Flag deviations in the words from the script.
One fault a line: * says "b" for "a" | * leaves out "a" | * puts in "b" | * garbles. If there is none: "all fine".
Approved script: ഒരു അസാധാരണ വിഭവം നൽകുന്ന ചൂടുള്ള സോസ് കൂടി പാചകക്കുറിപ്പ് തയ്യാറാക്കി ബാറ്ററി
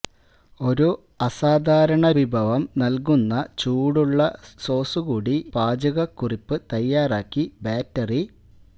all fine